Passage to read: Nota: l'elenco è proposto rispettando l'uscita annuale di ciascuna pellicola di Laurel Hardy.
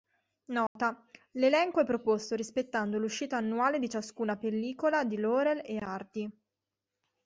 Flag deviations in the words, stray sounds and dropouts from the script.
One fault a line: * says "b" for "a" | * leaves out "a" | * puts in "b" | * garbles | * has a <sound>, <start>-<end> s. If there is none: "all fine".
* has a dropout, 0.7-0.8 s
* puts in "e"